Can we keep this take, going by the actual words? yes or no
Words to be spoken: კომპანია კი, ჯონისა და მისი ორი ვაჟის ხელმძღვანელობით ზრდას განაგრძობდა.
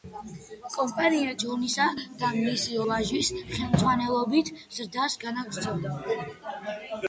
no